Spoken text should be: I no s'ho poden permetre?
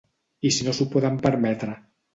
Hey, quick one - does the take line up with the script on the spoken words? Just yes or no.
no